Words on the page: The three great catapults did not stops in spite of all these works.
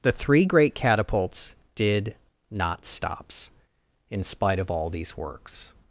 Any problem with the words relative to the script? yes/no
no